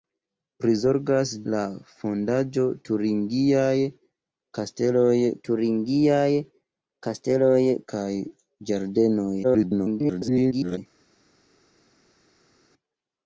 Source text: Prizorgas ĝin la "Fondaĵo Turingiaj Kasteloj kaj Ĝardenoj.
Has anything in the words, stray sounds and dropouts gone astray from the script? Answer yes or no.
yes